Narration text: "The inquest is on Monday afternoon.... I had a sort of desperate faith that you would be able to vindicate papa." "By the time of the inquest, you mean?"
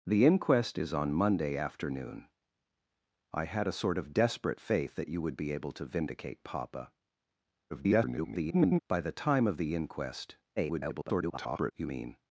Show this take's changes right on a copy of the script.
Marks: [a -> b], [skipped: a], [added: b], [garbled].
"The inquest is on Monday afternoon.... I had a sort of desperate faith that you would be able to vindicate papa." [garbled] "By the time of the inquest, [garbled] you mean?"